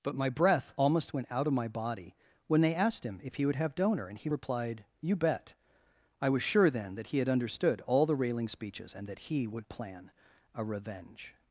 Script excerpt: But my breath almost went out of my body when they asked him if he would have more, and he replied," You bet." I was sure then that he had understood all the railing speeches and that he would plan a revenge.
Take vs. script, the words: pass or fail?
fail